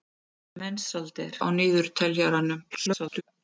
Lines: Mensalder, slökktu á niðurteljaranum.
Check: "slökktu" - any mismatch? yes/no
yes